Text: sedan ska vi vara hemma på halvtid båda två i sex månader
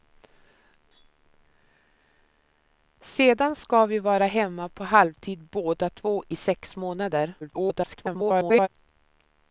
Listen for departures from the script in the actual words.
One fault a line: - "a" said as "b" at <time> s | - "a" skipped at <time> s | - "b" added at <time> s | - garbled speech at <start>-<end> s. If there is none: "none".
- garbled speech at 7.4-8.7 s